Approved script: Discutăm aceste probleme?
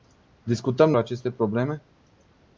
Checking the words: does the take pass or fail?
pass